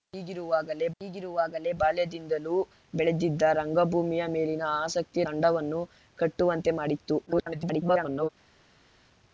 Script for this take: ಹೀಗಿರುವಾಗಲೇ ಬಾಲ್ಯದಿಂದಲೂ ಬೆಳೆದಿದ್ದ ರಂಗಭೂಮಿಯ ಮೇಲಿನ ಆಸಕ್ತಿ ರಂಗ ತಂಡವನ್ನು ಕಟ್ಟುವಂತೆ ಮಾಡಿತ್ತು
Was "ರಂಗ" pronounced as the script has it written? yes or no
no